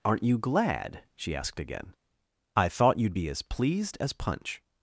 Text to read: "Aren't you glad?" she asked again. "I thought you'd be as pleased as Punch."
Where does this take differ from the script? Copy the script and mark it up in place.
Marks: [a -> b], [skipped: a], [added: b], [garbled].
"Aren't you glad?" she asked again. "I thought you'd be as pleased as Punch."